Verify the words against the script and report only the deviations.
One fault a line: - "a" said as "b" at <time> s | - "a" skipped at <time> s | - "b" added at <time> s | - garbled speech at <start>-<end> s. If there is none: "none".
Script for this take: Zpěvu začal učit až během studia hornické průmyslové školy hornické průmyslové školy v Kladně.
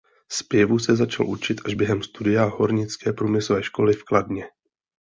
- "se" added at 0.8 s
- "hornické průmyslové školy" skipped at 3.9 s